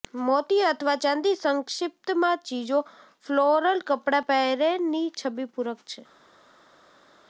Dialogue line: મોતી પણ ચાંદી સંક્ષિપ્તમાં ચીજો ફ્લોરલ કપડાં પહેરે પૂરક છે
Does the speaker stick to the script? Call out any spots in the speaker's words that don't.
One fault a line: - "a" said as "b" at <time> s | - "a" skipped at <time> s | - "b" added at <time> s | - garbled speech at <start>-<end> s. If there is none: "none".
- "પણ" said as "અથવા" at 0.7 s
- "ની છબી" added at 4.9 s